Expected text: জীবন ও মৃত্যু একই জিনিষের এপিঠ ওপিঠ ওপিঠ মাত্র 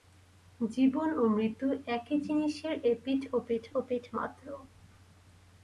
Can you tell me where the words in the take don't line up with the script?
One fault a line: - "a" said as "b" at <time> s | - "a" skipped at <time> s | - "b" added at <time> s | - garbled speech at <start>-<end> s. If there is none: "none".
none